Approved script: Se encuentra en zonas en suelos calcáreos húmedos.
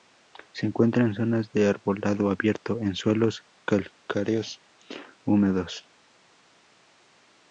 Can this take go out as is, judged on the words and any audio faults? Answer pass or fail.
fail